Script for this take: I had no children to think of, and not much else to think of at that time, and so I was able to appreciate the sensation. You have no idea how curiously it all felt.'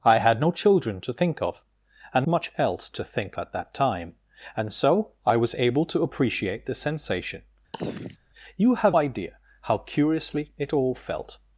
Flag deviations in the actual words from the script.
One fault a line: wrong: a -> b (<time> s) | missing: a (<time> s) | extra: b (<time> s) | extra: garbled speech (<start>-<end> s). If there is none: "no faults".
missing: not (2.3 s)
missing: of (3.4 s)
missing: no (9.0 s)